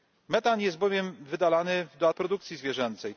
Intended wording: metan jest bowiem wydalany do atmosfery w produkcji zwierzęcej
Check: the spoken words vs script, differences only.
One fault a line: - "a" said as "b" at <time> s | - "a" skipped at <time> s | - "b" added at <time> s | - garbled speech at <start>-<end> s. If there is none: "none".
- "atmosfery" skipped at 2.1 s